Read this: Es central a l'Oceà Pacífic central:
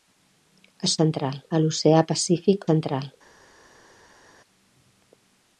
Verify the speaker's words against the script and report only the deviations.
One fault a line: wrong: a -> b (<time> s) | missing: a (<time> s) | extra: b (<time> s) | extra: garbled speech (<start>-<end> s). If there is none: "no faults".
no faults